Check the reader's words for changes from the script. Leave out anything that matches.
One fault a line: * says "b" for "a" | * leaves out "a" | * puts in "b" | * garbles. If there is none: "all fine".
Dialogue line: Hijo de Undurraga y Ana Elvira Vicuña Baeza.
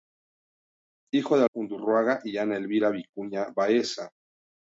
all fine